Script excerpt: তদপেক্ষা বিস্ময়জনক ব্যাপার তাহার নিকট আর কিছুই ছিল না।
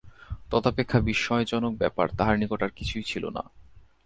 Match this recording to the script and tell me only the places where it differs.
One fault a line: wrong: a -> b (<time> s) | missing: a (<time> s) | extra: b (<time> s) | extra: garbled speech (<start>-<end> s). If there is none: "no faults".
no faults